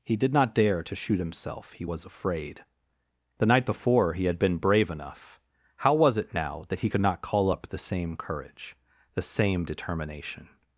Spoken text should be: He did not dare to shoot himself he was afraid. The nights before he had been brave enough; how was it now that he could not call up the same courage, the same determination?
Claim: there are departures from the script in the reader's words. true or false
true